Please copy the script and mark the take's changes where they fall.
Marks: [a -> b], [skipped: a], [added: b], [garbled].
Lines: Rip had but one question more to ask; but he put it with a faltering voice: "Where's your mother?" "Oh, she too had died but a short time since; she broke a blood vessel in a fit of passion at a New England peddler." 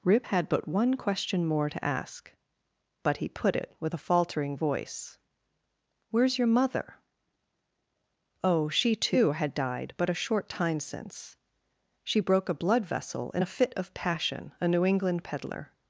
Rip had but one question more to ask; but he put it with a faltering voice: "Where's your mother?" "Oh, she too had died but a short time since; she broke a blood vessel in a fit of passion [skipped: at] a New England peddler."